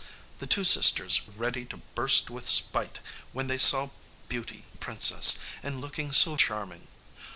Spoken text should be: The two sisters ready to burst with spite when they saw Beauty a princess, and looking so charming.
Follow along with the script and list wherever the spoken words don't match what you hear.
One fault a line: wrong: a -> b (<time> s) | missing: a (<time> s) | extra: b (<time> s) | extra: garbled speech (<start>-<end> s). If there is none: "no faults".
no faults